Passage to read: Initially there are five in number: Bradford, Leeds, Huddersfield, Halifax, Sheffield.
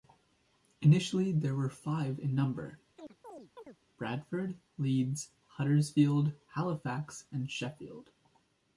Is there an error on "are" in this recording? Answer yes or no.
yes